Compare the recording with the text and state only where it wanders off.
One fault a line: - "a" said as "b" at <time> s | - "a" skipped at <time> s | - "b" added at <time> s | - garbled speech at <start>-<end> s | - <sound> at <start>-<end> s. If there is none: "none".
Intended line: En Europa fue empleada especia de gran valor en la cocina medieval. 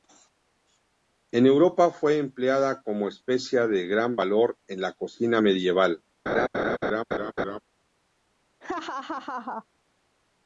- "como" added at 2.8 s
- laugh at 6.3-7.6 s
- laugh at 8.6-9.7 s